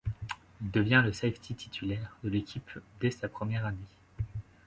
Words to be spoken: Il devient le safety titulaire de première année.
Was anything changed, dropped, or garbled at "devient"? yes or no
no